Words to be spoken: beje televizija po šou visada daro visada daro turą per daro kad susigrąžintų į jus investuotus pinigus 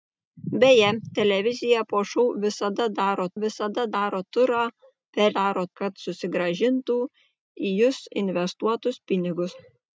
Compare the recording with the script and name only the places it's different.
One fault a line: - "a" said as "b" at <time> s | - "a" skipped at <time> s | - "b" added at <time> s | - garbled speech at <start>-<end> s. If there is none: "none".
none